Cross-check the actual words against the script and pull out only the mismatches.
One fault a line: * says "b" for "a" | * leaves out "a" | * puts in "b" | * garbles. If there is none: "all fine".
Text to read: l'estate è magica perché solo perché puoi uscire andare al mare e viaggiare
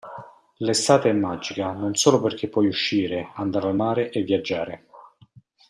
* says "non" for "perché"